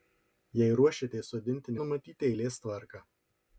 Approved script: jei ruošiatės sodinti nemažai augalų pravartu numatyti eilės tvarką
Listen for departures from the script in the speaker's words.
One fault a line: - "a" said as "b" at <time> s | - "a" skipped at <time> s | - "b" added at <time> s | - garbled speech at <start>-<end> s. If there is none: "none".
- "nemažai augalų pravartu" skipped at 1.8 s